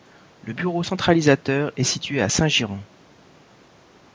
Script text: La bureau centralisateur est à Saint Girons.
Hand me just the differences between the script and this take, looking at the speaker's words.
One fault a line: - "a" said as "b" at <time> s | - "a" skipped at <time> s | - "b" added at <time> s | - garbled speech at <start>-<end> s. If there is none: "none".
- "La" said as "Le" at 0.4 s
- "situé" added at 1.8 s